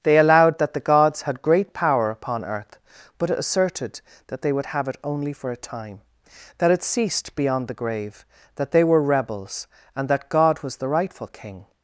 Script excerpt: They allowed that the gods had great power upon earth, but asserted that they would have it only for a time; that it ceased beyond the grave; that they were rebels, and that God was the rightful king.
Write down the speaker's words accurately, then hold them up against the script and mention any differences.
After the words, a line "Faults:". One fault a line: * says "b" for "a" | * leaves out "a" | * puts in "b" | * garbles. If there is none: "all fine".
They allowed that the gods had great power upon earth, but asserted that they would have it only for a time; that it ceased beyond the grave; that they were rebels, and that God was the rightful king.
Faults:
all fine